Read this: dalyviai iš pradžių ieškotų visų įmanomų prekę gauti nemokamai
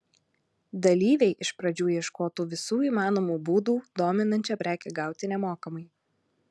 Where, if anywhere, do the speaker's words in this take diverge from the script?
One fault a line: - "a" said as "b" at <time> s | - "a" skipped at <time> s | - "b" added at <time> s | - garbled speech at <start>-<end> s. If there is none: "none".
- "būdų dominančią" added at 3.5 s